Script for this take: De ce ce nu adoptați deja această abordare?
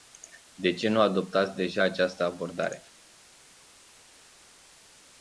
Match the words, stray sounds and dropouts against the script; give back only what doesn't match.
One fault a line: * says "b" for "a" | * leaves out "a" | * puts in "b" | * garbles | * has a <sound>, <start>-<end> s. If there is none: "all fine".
* leaves out "ce"